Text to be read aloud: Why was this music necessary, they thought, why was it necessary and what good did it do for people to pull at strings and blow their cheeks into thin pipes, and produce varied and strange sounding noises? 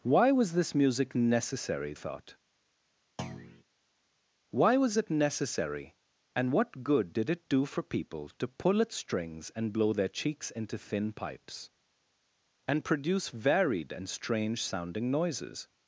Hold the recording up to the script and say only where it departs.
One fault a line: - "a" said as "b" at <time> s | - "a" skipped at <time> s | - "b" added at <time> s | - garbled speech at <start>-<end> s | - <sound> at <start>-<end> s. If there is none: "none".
- "they" skipped at 1.9 s
- thud at 3.2-3.6 s